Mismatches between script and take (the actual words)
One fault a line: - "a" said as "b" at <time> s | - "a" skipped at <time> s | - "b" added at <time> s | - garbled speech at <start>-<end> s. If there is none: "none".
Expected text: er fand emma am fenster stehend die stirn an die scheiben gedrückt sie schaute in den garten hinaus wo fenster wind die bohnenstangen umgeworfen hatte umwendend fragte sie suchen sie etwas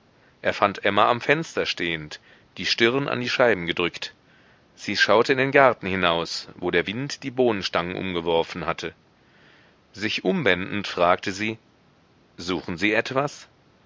- "fenster" said as "der" at 6.7 s
- "sich" added at 9.9 s